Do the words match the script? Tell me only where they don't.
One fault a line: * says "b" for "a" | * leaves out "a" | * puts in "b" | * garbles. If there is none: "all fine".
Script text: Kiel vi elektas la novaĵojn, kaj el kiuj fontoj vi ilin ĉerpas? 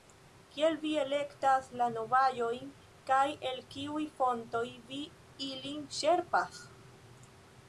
all fine